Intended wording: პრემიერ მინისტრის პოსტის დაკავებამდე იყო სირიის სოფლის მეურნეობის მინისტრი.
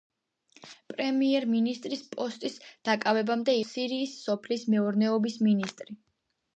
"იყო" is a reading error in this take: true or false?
true